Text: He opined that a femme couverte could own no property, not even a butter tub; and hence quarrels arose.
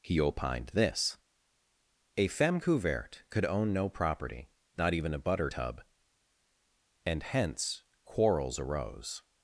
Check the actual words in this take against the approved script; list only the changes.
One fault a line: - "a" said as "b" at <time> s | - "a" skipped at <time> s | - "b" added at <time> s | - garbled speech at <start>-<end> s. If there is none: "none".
- "that" said as "this" at 0.7 s